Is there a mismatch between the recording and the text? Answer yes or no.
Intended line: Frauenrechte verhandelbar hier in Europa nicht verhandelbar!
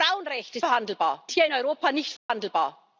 no